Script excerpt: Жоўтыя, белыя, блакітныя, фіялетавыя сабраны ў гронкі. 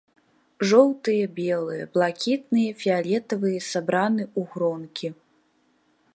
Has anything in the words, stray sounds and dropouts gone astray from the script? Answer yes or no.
no